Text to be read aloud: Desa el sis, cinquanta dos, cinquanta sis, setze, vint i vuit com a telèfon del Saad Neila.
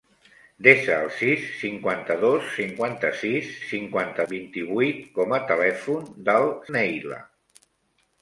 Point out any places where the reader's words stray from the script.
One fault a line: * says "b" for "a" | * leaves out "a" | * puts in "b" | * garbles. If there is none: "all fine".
* says "cinquanta" for "setze"
* leaves out "Saad"